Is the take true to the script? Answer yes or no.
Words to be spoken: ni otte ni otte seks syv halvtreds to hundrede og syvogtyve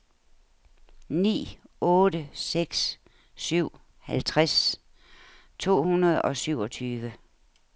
no